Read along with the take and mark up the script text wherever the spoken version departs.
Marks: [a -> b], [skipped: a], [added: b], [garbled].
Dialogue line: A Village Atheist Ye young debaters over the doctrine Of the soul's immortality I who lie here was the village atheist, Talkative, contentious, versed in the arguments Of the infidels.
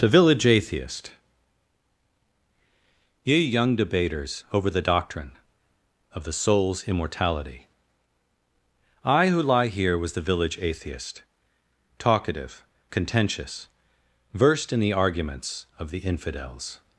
[A -> The] Village Atheist Ye young debaters over the doctrine Of the soul's immortality I who lie here was the village atheist, Talkative, contentious, versed in the arguments Of the infidels.